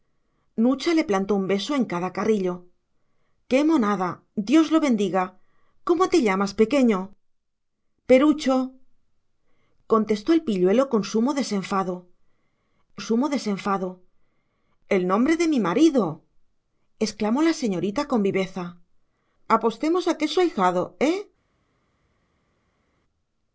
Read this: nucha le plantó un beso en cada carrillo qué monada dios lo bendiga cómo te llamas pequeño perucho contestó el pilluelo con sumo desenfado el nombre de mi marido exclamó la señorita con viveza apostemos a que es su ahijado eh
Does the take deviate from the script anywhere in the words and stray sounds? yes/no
yes